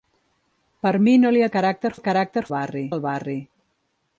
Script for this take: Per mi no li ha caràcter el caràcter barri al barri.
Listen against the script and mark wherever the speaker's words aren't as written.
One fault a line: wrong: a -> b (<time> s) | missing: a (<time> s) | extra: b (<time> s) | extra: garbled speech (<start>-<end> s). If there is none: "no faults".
no faults